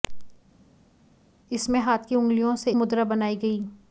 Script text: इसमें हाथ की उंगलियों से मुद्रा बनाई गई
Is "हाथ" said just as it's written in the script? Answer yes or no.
yes